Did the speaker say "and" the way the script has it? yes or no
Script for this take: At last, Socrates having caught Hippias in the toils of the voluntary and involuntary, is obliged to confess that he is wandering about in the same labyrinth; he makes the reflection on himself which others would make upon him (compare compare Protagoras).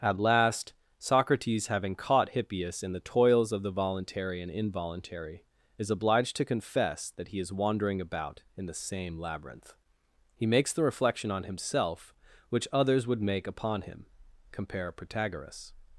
yes